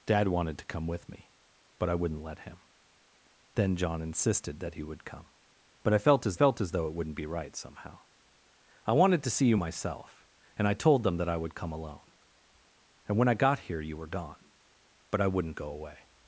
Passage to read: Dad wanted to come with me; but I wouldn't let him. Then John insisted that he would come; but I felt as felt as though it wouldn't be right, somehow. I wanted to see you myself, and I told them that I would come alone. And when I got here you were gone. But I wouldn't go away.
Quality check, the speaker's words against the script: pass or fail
pass